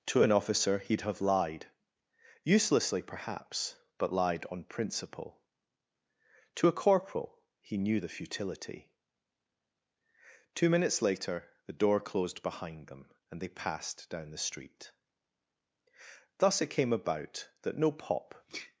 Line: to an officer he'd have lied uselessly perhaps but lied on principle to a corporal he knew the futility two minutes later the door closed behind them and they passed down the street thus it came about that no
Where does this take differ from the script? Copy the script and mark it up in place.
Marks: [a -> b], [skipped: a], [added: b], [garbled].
to an officer he'd have lied uselessly perhaps but lied on principle to a corporal he knew the futility two minutes later the door closed behind them and they passed down the street thus it came about that no [added: pop]